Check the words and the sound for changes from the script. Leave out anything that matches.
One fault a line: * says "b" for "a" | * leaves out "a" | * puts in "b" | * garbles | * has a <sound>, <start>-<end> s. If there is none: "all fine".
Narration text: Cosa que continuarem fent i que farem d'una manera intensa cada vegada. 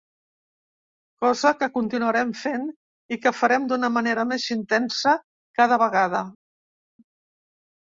* puts in "més"